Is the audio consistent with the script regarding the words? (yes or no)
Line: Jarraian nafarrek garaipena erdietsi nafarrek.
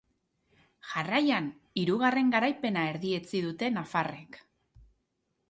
no